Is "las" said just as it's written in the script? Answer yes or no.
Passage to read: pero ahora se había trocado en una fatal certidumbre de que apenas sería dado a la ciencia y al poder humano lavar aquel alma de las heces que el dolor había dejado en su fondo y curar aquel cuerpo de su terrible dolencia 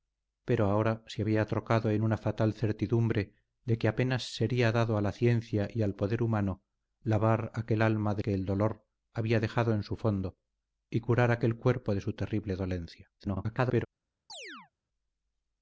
no